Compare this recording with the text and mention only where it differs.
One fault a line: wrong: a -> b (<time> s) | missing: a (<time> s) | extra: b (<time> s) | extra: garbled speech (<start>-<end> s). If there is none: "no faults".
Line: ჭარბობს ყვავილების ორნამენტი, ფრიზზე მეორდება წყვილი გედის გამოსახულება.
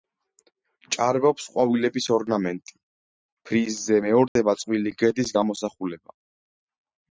no faults